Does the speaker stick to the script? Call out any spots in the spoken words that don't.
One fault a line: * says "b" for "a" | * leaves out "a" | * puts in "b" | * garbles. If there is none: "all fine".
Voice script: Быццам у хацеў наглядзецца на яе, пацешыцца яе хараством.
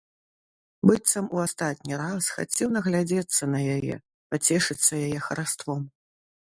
* puts in "астатні раз"